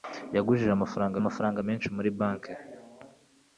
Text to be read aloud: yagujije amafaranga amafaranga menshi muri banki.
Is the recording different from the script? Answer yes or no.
no